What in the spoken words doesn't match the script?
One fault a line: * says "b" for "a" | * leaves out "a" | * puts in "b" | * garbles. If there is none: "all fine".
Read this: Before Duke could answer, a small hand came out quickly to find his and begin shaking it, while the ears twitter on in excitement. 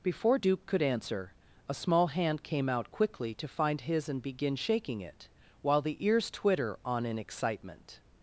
all fine